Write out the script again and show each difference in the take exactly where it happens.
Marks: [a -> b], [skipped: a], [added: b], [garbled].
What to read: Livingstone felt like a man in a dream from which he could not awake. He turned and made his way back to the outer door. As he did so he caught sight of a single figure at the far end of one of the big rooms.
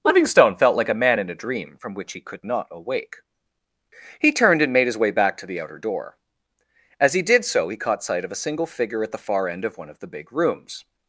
Livingstone felt like a man in a dream from which he could not awake. He turned and made his way back to the outer door. As he did so he caught sight of a single figure at the far end of one of the big rooms.